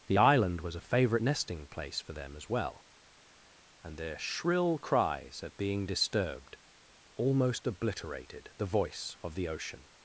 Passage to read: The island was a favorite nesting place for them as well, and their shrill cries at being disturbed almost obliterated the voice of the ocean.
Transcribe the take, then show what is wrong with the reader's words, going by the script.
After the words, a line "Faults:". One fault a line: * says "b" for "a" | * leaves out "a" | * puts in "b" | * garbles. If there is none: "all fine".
The island was a favorite nesting place for them as well, and their shrill cries at being disturbed almost obliterated the voice of the ocean.
Faults:
all fine